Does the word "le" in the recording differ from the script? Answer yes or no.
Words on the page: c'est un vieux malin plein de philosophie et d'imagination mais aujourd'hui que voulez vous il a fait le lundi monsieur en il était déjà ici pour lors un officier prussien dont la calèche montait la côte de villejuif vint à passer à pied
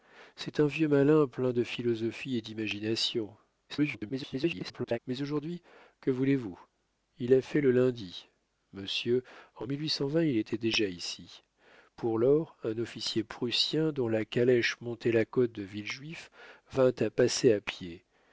no